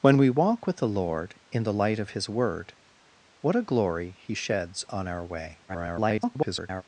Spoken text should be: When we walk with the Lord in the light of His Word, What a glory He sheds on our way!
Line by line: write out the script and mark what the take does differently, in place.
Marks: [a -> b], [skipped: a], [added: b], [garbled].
When we walk with the Lord in the light of His Word, What a glory He sheds on our way! [garbled]